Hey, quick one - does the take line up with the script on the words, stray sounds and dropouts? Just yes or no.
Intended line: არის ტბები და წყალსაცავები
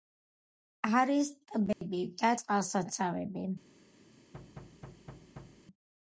no